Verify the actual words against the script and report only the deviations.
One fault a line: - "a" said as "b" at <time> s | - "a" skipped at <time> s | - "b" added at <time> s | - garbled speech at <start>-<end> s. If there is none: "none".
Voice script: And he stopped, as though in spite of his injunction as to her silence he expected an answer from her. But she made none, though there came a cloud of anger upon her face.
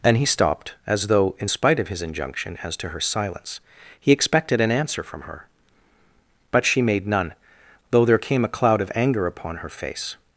none